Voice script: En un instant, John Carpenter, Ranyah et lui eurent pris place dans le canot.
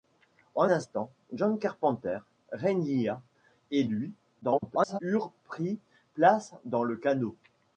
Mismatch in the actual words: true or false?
true